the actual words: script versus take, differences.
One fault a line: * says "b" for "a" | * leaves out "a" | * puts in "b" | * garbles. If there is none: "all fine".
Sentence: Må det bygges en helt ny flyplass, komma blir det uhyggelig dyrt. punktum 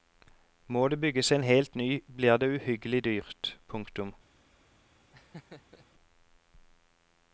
* leaves out "flyplass komma"